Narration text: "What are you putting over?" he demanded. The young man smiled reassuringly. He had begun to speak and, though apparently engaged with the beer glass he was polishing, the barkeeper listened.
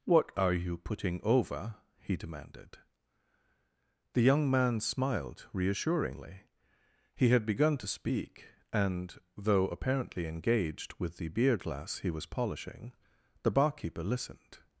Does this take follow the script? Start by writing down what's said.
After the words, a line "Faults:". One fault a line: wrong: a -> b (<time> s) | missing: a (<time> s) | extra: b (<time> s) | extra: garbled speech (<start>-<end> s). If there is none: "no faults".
"What are you putting over?" he demanded. The young man smiled reassuringly. He had begun to speak and, though apparently engaged with the beer glass he was polishing, the barkeeper listened.
Faults:
no faults